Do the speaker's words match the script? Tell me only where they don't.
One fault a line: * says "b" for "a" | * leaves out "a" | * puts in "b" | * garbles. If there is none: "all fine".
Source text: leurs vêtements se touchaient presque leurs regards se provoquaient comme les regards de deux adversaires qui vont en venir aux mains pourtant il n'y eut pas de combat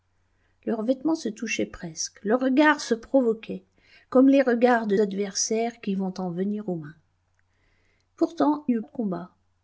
* leaves out "deux"
* leaves out "il"
* leaves out "pas"